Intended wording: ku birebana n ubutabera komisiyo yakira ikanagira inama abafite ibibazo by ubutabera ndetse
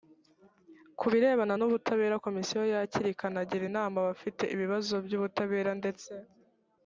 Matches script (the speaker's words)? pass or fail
pass